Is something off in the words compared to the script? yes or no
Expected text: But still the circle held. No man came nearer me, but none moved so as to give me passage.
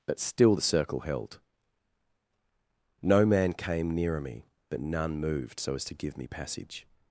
no